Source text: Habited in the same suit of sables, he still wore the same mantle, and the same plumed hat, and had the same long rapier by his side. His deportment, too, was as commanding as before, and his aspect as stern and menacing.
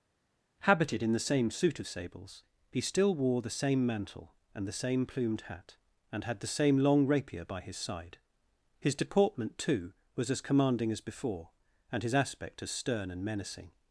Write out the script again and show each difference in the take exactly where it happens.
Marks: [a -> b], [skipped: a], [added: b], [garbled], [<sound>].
Habited in the same suit of sables, he still wore the same mantle, and the same plumed hat, and had the same long rapier by his side. His deportment, too, was as commanding as before, and his aspect as stern and menacing.